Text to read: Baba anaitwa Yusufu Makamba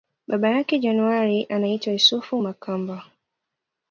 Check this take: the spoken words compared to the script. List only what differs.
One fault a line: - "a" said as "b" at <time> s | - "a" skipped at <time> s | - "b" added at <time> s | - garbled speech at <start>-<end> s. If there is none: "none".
- "yake January" added at 0.5 s